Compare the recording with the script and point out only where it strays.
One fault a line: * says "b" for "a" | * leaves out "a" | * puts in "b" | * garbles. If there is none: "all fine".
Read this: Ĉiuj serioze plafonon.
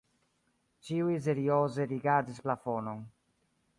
* puts in "rigardis"